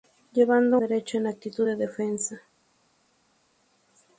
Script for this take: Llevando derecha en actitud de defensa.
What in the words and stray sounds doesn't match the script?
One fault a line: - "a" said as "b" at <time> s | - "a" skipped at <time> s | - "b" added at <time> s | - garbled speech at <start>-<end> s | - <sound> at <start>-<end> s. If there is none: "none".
none